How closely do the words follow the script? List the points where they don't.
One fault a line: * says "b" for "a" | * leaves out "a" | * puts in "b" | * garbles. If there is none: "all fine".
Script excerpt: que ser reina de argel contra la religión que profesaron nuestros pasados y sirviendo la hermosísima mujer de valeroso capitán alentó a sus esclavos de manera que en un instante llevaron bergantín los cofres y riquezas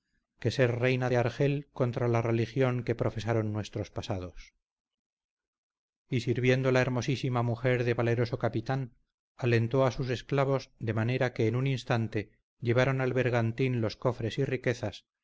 * puts in "al"